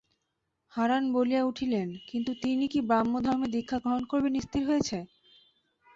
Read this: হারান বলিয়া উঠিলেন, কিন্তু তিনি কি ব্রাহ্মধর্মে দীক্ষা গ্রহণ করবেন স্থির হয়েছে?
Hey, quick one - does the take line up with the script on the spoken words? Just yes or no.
yes